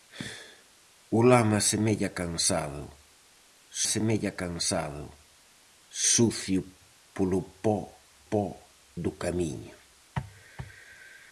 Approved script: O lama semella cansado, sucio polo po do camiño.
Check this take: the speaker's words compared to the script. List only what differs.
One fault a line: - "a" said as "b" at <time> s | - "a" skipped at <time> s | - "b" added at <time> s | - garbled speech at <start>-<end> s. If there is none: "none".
- "semella cansado" added at 3.9 s
- "po" added at 8.3 s